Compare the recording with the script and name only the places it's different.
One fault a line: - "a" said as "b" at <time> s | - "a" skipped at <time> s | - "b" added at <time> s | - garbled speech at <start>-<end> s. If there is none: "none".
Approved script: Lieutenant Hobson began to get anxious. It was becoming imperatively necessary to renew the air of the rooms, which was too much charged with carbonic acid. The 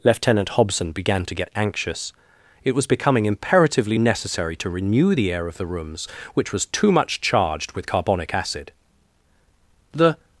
none